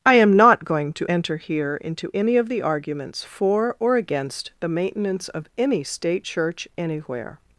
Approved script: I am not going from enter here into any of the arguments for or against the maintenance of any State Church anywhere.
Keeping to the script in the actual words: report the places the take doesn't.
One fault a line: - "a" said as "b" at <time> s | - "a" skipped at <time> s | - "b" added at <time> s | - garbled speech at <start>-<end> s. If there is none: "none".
- "from" said as "to" at 0.9 s